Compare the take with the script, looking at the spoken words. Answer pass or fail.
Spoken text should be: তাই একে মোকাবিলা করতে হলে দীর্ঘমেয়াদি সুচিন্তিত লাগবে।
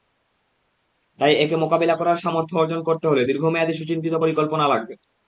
fail